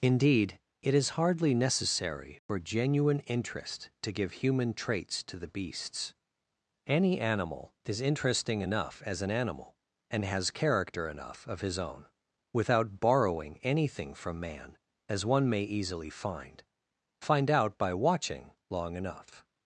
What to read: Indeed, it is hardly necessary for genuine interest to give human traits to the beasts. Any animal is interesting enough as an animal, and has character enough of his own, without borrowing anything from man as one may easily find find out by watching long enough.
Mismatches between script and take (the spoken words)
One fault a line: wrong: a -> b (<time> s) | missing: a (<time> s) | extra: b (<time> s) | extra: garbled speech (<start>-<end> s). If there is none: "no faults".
no faults